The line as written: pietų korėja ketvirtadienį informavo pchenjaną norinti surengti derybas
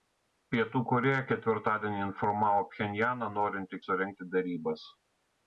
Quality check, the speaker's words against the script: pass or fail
pass